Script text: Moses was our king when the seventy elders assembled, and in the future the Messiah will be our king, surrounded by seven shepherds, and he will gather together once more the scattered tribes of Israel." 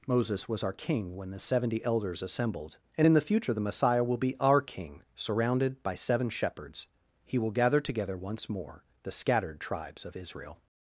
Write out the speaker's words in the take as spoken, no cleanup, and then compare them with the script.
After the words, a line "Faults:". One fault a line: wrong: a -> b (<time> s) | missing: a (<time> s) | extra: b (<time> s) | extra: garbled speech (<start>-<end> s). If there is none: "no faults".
Moses was our king when the seventy elders assembled, and in the future the Messiah will be our king, surrounded by seven shepherds, he will gather together once more the scattered tribes of Israel."
Faults:
missing: and (6.9 s)